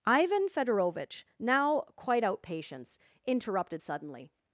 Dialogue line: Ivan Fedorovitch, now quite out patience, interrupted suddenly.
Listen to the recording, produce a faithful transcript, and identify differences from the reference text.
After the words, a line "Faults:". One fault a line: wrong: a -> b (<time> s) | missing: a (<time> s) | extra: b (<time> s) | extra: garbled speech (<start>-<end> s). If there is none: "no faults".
Ivan Fedorovitch, now quite out patience, interrupted suddenly.
Faults:
no faults